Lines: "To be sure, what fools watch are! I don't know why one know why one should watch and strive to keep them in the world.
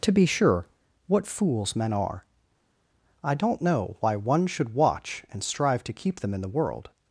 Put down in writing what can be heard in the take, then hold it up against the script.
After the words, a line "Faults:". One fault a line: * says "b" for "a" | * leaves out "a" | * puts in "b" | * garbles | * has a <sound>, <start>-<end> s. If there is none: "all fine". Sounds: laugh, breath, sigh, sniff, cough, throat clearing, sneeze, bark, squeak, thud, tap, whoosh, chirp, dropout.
"To be sure, what fools men are! I don't know why one should watch and strive to keep them in the world.
Faults:
* says "men" for "watch"
* leaves out "know why one"